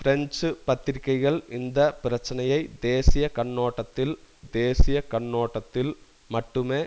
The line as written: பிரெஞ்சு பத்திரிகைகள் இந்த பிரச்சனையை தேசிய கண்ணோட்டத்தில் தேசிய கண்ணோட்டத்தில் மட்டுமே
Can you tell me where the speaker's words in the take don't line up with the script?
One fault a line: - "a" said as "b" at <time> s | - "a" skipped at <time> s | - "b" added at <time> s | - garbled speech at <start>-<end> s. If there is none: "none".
none